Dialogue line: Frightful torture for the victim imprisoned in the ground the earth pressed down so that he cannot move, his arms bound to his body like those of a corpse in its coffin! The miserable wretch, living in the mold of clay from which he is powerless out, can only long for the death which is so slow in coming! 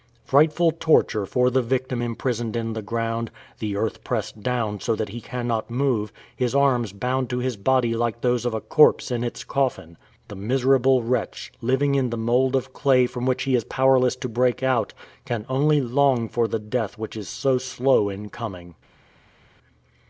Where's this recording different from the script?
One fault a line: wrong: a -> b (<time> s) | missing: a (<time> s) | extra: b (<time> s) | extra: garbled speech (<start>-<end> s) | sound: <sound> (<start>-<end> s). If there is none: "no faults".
extra: to break (14.2 s)